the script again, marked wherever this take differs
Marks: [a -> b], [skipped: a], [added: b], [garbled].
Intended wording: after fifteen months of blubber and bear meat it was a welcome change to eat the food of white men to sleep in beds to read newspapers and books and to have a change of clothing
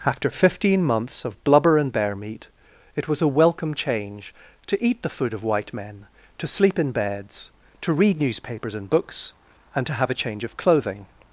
after fifteen months of blubber and bear meat it was a welcome change to eat the food of white men to sleep in beds to read newspapers and books and to have a change of clothing